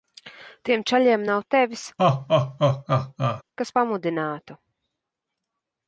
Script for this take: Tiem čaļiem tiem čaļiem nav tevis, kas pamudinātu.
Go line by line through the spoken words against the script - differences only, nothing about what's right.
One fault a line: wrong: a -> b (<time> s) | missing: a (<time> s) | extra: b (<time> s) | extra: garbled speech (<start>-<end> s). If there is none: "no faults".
missing: tiem čaļiem (1.3 s)